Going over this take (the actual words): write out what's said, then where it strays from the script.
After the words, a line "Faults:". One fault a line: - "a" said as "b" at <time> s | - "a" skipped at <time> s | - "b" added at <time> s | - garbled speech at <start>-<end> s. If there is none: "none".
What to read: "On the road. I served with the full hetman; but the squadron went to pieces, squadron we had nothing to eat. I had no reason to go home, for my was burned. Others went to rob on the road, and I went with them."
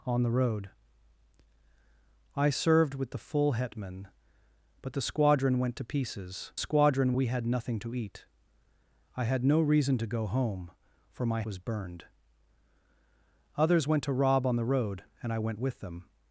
"On the road. I served with the full hetman; but the squadron went to pieces, squadron we had nothing to eat. I had no reason to go home, for my was burned. Others went to rob on the road, and I went with them."
Faults:
none